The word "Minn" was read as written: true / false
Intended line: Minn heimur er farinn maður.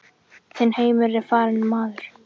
false